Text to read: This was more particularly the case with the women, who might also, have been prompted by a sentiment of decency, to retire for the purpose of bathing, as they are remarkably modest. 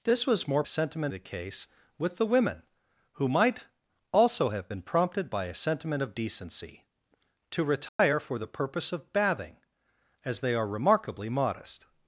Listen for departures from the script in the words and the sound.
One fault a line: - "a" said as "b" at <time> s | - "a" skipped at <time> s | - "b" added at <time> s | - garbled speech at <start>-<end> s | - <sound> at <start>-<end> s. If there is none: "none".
- "particularly" said as "sentiment" at 0.7 s
- dropout at 7.9-8.0 s